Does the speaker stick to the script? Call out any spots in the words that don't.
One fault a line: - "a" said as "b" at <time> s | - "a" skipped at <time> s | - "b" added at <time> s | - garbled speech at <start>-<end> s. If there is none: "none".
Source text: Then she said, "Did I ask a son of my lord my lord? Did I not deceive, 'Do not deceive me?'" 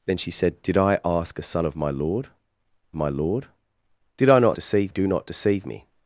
none